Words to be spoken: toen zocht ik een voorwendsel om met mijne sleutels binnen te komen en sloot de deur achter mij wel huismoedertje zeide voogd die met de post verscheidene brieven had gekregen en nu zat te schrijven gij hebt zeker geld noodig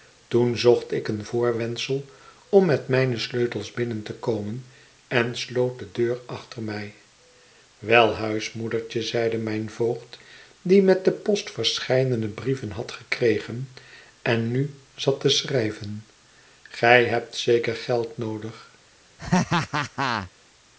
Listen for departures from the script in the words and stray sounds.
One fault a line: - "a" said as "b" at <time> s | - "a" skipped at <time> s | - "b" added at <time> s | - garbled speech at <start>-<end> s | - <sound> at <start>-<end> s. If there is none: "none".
- "mijn" added at 9.4 s
- laugh at 19.2-20.3 s